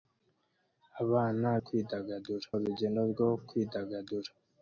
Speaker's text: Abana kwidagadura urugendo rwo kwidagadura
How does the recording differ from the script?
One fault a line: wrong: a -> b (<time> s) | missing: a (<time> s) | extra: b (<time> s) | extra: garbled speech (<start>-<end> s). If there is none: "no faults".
no faults